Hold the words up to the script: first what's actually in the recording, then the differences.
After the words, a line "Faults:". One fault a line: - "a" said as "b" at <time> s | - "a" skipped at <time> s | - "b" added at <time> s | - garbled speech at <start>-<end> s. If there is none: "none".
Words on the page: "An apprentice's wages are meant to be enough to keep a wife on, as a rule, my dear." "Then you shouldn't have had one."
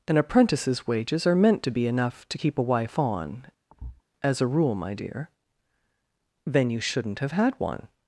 "An apprentice's wages are meant to be enough to keep a wife on, as a rule, my dear." "Then you shouldn't have had one."
Faults:
none